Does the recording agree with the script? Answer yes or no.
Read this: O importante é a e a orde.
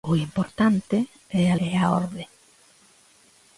yes